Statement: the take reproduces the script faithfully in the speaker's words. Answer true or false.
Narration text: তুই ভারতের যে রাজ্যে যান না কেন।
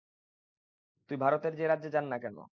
true